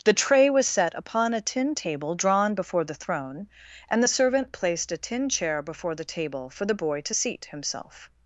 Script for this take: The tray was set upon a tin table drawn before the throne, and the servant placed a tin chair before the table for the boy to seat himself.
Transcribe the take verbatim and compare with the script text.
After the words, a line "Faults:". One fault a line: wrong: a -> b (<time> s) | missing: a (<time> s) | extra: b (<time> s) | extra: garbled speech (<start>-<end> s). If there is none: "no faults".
The tray was set upon a tin table drawn before the throne, and the servant placed a tin chair before the table for the boy to seat himself.
Faults:
no faults